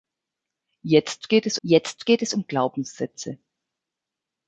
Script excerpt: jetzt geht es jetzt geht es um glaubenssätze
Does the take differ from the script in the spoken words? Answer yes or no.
no